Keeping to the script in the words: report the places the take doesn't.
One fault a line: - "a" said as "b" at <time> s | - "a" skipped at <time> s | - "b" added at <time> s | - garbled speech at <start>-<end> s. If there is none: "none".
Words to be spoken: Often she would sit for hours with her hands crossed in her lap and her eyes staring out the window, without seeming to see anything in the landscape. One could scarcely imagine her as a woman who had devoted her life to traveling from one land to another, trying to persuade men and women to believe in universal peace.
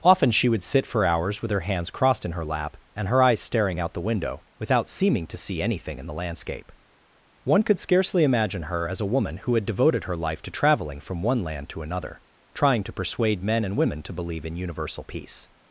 none